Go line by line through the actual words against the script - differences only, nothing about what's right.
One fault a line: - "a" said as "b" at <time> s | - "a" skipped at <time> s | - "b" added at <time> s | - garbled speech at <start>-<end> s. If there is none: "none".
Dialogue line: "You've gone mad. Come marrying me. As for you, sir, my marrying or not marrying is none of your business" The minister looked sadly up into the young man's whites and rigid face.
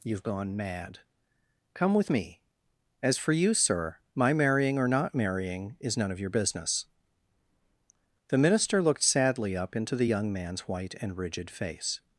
- "marrying" said as "with" at 1.9 s
- "whites" said as "white" at 10.7 s